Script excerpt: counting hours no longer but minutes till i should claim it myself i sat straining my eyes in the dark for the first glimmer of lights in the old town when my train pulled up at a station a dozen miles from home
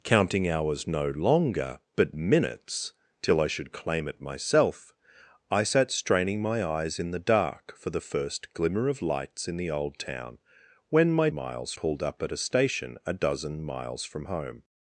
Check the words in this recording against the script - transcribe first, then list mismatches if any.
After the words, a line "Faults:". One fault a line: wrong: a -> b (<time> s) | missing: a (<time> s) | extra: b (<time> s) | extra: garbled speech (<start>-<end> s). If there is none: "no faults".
counting hours no longer but minutes till i should claim it myself i sat straining my eyes in the dark for the first glimmer of lights in the old town when my miles pulled up at a station a dozen miles from home
Faults:
wrong: train -> miles (11.3 s)